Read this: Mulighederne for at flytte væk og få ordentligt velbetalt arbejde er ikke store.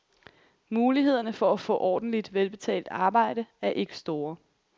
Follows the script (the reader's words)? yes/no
no